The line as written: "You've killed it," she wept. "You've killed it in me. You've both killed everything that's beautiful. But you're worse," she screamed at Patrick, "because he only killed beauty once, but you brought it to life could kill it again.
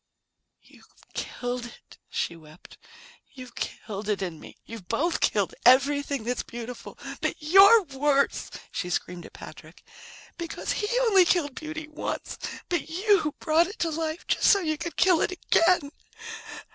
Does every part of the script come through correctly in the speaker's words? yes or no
no